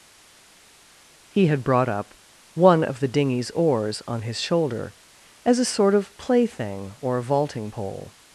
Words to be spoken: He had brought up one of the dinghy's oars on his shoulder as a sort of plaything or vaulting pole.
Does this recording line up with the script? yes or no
yes